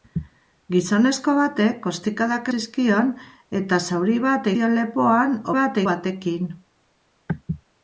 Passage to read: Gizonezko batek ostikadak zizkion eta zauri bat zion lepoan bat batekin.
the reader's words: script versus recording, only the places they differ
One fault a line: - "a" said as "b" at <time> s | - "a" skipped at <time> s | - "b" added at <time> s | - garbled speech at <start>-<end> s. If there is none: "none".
none